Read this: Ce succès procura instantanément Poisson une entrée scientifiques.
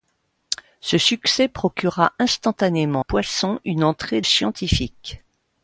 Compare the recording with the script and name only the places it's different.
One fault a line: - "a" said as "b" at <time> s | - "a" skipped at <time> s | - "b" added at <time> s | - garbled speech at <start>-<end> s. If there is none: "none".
none